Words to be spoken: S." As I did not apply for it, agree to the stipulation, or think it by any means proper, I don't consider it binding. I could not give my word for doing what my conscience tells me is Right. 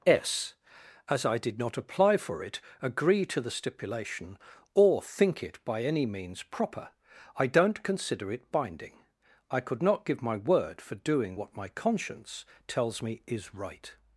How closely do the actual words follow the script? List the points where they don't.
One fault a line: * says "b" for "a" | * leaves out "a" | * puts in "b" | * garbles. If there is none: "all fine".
all fine